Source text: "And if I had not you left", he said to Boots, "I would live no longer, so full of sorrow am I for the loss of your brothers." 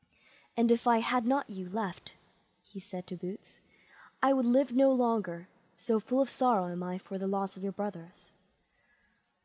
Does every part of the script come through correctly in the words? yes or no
yes